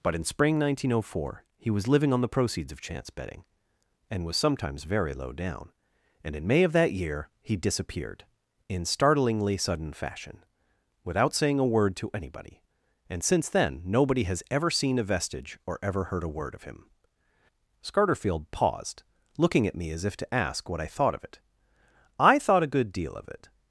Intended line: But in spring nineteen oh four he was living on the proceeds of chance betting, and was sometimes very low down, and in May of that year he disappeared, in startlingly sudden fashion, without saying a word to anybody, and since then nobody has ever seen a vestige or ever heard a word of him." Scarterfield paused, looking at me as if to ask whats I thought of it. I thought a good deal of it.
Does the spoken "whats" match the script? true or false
false